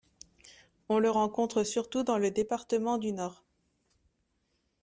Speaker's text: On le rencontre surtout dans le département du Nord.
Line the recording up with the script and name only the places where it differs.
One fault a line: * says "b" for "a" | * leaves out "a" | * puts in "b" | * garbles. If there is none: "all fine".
all fine